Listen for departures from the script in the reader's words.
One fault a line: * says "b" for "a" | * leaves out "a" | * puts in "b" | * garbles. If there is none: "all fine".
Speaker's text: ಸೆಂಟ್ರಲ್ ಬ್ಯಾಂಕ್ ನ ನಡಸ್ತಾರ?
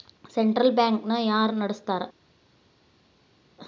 * puts in "ಯಾರ್"